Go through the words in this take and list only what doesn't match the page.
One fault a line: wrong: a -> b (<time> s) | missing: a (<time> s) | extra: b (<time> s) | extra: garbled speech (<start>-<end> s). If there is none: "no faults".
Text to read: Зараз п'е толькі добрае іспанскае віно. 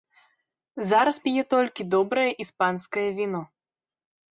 no faults